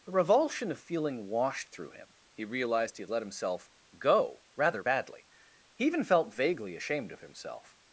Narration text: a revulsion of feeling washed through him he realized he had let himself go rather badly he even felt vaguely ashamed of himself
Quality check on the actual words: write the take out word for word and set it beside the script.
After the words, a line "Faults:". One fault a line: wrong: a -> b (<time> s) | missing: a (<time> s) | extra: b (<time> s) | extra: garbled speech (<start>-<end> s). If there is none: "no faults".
a revulsion of feeling washed through him he realized he had let himself go rather badly he even felt vaguely ashamed of himself
Faults:
no faults